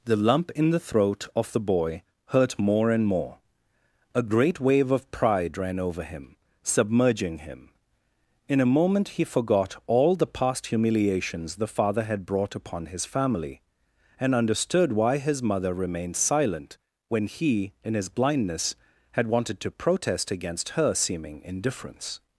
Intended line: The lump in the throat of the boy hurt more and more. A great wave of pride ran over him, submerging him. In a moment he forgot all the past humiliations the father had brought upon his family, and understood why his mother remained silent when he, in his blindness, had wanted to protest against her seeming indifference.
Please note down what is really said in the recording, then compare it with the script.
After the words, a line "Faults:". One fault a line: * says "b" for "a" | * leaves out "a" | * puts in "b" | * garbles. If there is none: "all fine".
The lump in the throat of the boy hurt more and more. A great wave of pride ran over him, submerging him. In a moment he forgot all the past humiliations the father had brought upon his family, and understood why his mother remained silent when he, in his blindness, had wanted to protest against her seeming indifference.
Faults:
all fine